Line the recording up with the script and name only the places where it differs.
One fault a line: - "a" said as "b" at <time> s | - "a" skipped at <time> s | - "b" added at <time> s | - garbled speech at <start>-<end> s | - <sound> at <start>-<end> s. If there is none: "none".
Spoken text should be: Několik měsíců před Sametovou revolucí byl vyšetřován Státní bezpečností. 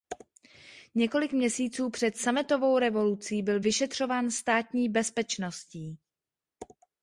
none